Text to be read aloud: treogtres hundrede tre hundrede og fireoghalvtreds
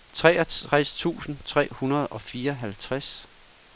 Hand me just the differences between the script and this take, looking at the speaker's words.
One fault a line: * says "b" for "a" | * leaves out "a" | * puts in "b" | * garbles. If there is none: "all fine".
* says "tusind" for "hundrede"